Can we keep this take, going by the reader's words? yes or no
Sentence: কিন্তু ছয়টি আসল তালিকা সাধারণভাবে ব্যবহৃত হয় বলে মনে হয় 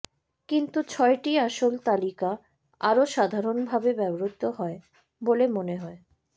no